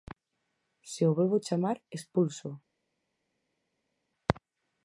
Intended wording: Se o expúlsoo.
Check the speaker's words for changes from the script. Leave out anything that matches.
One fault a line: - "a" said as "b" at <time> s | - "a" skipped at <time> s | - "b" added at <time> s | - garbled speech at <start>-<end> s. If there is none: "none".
- "volvo chamar" added at 1.2 s